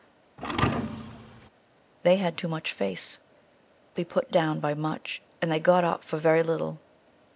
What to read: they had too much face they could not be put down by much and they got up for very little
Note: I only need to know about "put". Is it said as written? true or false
true